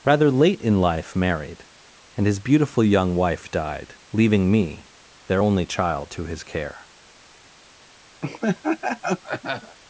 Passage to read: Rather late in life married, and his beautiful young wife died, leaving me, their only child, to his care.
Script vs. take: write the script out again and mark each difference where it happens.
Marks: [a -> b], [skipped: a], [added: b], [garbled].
Rather late in life married, and his beautiful young wife died, leaving me, their only child, to his care.